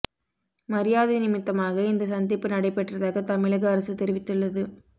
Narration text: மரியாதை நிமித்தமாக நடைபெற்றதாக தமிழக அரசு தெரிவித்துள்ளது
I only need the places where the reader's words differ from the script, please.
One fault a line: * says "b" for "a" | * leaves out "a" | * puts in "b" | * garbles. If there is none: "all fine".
* puts in "இந்த சந்திப்பு"